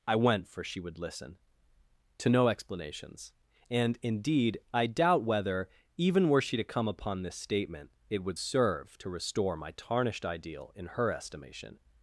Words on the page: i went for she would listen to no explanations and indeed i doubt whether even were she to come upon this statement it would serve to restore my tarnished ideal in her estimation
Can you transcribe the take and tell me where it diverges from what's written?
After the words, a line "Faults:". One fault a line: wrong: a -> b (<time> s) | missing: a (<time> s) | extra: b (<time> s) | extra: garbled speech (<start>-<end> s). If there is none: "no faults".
i went for she would listen to no explanations and indeed i doubt whether even were she to come upon this statement it would serve to restore my tarnished ideal in her estimation
Faults:
no faults